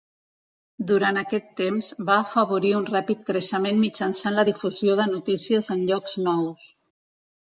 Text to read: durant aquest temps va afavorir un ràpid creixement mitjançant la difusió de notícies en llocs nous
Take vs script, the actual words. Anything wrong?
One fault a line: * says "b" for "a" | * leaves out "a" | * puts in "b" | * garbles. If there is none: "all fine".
all fine